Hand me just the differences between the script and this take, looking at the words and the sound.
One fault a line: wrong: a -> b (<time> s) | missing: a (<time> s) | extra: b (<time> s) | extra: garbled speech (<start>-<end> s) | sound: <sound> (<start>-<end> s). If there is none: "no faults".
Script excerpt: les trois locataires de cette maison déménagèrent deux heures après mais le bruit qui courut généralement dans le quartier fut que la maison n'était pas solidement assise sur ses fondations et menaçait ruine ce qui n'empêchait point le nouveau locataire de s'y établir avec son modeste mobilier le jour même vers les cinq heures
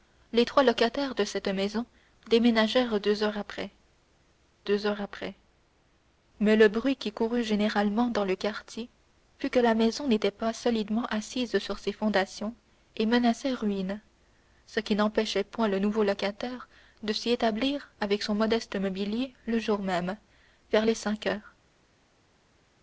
extra: deux heures après (4.6 s)